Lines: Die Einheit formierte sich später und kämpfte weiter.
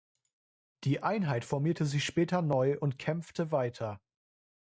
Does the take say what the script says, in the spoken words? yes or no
no